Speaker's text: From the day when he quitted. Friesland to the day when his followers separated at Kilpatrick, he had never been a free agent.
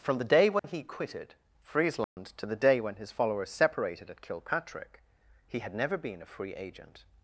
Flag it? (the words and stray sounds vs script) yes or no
yes